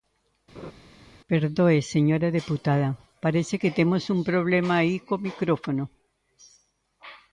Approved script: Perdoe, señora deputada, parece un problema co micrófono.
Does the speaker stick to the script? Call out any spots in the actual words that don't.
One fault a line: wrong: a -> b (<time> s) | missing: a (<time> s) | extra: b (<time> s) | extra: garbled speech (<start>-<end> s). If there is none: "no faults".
extra: que temos (3.6 s)
extra: aí (4.8 s)